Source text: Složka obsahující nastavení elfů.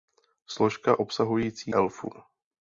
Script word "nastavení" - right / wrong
wrong